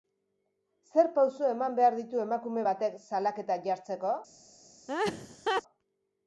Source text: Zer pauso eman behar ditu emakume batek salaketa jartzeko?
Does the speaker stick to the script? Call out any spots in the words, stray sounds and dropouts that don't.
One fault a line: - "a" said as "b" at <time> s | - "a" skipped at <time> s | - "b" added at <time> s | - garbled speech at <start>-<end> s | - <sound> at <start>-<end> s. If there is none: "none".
- laugh at 4.9-5.6 s